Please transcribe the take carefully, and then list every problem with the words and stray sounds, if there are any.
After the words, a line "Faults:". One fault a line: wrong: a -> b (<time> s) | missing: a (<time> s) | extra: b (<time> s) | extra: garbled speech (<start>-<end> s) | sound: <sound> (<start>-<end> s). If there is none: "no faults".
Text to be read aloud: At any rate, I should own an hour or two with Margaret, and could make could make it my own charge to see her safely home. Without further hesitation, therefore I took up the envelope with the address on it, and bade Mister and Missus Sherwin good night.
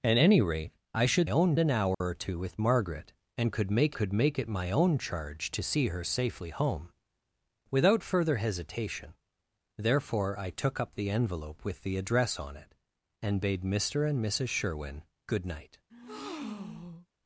At any rate, I should own an hour or two with Margaret, and could make could make it my own charge to see her safely home. Without further hesitation, therefore I took up the envelope with the address on it, and bade Mister and Missus Sherwin good night.
Faults:
sound: dropout (1.9-2.0 s)
sound: breath (15.9-17.1 s)